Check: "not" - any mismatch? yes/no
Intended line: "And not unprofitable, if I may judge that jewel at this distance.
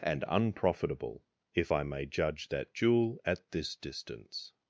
yes